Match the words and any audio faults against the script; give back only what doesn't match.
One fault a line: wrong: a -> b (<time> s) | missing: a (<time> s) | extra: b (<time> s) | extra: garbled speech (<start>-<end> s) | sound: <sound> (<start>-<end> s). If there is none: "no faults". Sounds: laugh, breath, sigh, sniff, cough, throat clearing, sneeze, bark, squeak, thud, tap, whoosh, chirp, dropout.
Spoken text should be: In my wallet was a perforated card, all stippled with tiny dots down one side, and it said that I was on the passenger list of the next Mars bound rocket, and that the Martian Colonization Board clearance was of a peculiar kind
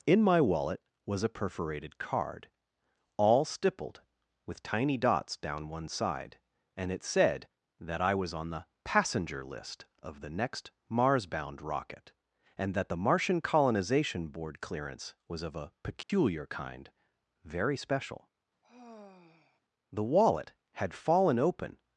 sound: dropout (16.0-16.1 s)
extra: very special The wallet had fallen open (17.4 s)
sound: sigh (18.6-19.6 s)